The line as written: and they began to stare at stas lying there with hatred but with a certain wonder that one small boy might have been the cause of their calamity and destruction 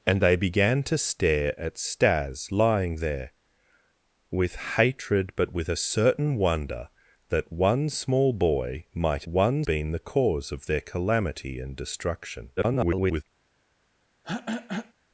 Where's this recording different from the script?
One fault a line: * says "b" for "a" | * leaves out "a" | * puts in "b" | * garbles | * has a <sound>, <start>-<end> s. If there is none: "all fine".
* says "one" for "have"
* garbles
* has a throat clearing, 14.2-14.9 s